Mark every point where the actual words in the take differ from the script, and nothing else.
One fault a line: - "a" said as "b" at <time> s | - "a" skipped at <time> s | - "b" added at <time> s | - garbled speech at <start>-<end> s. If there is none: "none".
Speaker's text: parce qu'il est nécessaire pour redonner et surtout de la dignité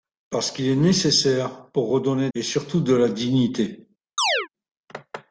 none